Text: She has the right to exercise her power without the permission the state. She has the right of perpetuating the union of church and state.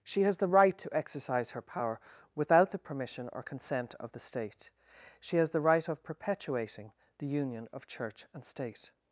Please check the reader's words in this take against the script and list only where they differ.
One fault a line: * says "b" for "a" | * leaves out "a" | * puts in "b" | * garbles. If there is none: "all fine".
* puts in "or consent of"